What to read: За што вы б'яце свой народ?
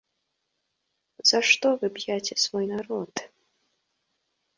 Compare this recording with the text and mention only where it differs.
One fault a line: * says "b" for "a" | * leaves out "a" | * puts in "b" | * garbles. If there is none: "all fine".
all fine